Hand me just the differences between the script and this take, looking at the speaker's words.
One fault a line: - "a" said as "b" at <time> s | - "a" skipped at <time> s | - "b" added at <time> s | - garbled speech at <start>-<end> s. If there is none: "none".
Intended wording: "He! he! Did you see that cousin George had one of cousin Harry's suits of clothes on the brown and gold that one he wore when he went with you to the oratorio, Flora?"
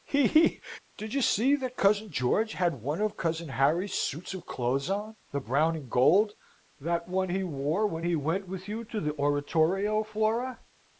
none